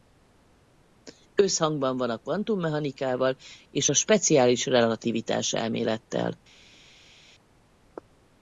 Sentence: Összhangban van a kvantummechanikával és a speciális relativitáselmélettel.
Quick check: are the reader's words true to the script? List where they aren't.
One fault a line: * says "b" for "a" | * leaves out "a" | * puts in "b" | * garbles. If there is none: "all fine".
all fine